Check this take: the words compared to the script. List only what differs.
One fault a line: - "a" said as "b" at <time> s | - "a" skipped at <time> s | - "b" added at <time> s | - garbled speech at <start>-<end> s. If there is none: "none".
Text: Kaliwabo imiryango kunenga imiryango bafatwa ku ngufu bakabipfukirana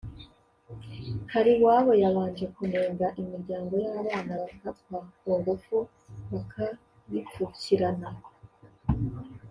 - "imiryango" said as "yabanje" at 2.0 s
- "y'abana" added at 3.8 s